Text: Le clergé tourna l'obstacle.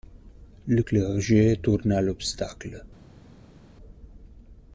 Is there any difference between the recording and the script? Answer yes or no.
no